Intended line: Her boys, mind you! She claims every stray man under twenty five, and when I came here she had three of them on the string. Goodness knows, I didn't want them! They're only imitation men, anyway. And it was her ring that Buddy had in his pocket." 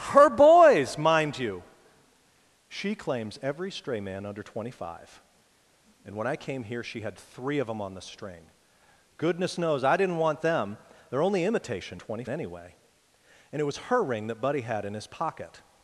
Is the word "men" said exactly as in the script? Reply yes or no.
no